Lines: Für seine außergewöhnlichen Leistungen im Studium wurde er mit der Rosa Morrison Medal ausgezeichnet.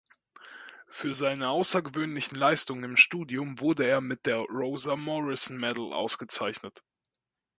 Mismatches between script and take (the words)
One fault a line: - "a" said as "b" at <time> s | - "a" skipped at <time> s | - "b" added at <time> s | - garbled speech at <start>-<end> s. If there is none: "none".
none